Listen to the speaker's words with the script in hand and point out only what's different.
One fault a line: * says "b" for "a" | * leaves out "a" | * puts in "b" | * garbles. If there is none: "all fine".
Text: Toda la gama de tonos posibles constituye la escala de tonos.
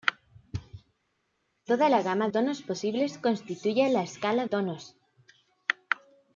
* leaves out "de"
* leaves out "de"